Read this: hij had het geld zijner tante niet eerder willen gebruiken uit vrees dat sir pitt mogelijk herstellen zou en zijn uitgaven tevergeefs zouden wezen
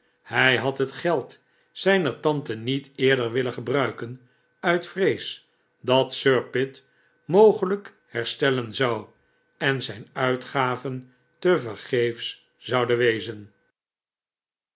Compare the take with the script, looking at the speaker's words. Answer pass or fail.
pass